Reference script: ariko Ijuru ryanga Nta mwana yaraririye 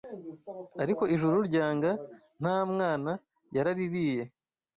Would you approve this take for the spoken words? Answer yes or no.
yes